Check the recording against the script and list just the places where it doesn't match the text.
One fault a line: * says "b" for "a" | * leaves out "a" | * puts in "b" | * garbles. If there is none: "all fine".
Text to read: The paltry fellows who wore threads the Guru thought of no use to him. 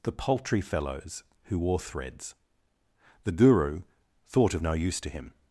all fine